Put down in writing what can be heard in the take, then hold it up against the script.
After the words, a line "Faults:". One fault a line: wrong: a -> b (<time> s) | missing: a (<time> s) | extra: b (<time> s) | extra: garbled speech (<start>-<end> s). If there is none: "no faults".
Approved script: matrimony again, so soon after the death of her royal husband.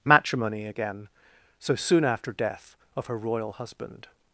matrimony again, so soon after death of her royal husband.
Faults:
missing: the (2.3 s)